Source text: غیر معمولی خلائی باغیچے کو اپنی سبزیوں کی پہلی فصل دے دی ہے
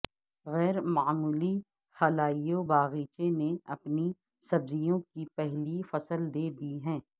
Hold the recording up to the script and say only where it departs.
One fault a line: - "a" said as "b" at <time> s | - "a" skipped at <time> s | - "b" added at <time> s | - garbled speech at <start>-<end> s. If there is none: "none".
- "کو" said as "نے" at 3.4 s